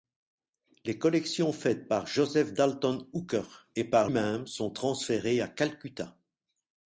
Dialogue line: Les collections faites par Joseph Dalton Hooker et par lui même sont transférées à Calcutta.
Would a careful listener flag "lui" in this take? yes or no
yes